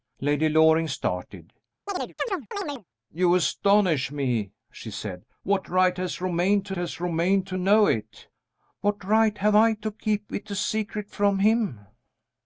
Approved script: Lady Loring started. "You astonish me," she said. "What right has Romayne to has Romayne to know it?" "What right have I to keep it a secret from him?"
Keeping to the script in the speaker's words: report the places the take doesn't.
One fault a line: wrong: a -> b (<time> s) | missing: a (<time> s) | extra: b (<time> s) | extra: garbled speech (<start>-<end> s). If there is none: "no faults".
no faults